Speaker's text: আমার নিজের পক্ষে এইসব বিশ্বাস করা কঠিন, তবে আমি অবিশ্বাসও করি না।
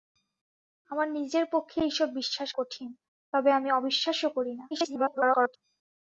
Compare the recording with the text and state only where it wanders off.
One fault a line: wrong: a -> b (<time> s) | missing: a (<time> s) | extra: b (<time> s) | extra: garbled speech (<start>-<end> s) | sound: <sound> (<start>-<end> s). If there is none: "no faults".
missing: করা (2.5 s)
extra: garbled speech (4.7-5.6 s)